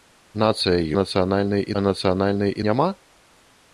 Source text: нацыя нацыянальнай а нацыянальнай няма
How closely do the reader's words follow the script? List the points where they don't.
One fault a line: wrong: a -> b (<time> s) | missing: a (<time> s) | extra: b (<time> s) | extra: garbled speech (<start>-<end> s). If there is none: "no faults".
no faults